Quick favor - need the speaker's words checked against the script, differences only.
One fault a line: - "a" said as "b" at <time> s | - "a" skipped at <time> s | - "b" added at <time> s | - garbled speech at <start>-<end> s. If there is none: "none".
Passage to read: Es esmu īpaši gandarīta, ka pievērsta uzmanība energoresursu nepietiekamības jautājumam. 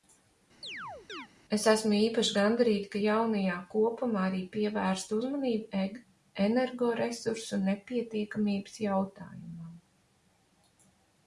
- "jaunajā kopumā arī" added at 3.0 s